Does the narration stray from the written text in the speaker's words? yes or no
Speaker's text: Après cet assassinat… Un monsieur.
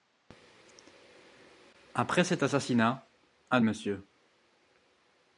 no